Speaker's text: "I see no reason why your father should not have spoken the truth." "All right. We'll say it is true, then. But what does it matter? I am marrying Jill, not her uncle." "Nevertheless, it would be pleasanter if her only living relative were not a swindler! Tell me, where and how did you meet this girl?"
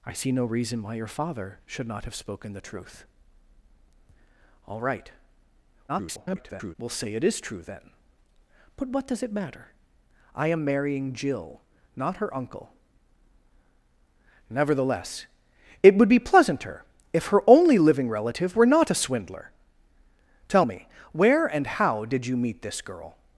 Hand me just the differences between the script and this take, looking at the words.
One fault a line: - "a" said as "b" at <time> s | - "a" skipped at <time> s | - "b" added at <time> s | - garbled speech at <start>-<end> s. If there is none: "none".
- garbled speech at 5.9-6.8 s